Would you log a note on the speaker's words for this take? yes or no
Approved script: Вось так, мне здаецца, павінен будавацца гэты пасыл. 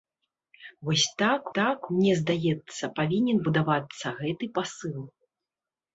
yes